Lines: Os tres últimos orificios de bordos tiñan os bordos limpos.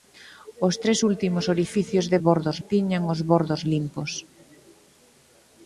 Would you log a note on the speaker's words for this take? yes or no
no